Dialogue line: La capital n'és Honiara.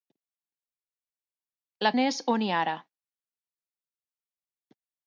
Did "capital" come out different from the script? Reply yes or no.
yes